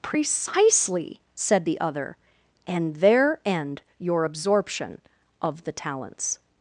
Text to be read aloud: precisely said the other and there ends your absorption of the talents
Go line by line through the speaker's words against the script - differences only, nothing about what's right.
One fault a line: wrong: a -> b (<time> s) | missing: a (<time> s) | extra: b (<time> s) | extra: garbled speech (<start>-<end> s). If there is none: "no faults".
wrong: ends -> end (3.4 s)